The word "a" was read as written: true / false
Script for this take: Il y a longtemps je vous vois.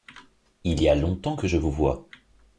true